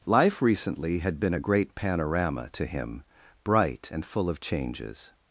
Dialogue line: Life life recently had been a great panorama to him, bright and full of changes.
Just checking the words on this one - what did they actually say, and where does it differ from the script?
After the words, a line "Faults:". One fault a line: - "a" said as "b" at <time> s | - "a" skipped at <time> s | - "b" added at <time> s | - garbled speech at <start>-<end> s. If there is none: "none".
Life recently had been a great panorama to him, bright and full of changes.
Faults:
- "life" skipped at 0.4 s